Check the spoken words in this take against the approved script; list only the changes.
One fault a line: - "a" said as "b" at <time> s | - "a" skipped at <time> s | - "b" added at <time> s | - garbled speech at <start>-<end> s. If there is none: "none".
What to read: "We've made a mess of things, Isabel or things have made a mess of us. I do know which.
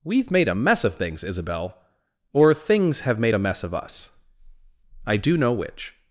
none